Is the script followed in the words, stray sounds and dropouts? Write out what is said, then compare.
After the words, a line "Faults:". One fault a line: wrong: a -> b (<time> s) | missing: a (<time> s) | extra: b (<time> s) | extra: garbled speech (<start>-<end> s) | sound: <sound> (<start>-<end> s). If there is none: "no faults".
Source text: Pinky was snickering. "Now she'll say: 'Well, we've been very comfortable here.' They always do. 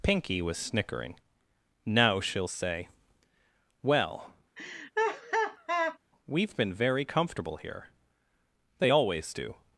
Pinky was snickering. "Now she'll say: 'Well, we've been very comfortable here.' They always do.
Faults:
sound: laugh (4.6-6.0 s)